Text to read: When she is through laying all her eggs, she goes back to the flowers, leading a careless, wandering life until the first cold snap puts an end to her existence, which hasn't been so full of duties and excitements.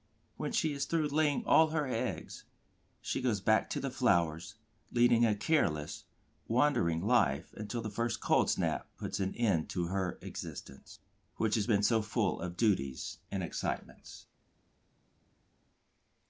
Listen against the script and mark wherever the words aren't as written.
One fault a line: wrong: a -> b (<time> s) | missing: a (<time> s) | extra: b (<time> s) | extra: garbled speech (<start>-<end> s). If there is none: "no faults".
wrong: hasn't -> has (11.5 s)